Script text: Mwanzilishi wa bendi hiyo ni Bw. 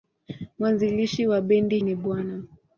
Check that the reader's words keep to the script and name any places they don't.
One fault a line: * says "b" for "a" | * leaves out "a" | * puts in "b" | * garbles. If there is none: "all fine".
* leaves out "hiyo"